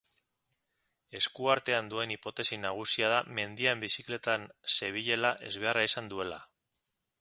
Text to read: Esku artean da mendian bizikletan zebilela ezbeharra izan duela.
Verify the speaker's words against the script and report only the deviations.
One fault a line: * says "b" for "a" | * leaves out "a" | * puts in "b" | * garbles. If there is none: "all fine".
* puts in "duen hipotesi nagusia"